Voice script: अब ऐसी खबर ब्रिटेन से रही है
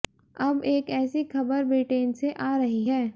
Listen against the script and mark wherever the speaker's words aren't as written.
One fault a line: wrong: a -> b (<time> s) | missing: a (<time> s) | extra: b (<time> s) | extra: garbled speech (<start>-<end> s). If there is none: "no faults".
extra: एक (0.7 s)
extra: आ (2.3 s)